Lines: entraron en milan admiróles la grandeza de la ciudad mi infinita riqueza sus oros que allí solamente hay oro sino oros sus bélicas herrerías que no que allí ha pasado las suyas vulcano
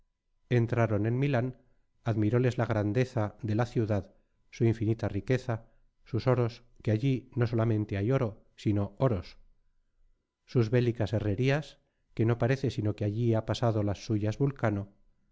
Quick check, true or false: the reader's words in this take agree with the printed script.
false